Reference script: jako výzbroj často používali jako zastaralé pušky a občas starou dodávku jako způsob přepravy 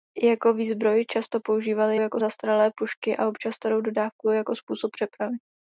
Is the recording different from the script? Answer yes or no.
no